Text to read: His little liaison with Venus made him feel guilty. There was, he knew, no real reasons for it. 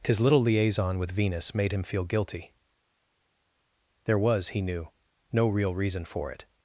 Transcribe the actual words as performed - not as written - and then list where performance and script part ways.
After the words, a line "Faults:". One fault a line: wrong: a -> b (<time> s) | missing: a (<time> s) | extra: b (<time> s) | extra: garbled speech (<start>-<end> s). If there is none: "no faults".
His little liaison with Venus made him feel guilty. There was, he knew, no real reason for it.
Faults:
wrong: reasons -> reason (5.7 s)